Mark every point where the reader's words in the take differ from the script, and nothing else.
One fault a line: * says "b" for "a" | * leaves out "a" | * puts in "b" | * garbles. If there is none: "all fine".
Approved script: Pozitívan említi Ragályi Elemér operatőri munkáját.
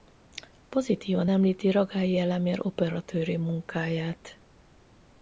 all fine